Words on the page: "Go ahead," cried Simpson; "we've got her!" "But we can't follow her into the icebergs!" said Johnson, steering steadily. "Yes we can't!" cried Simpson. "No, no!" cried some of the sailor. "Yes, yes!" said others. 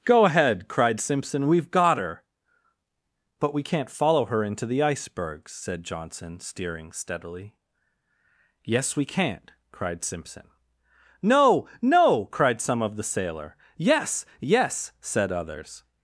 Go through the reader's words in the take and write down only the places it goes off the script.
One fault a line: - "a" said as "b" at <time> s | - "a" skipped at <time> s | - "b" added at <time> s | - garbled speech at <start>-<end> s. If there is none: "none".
none